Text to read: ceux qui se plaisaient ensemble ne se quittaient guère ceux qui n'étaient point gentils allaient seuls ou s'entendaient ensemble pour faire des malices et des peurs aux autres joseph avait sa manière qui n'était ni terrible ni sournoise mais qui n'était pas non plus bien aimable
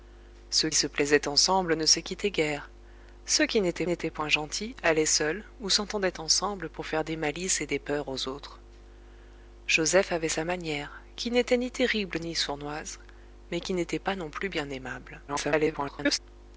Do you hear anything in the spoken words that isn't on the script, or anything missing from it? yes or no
yes